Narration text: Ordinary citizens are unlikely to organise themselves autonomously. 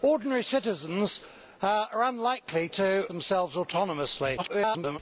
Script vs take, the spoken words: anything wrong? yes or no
yes